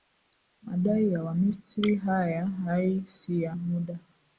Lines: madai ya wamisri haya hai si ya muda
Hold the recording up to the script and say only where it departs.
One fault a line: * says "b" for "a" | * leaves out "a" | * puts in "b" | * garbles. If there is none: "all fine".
all fine